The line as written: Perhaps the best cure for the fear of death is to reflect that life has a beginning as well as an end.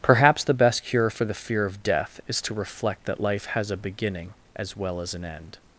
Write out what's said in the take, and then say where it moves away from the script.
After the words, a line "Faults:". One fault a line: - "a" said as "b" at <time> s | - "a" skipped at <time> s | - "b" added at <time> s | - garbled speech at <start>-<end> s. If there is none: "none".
Perhaps the best cure for the fear of death is to reflect that life has a beginning as well as an end.
Faults:
none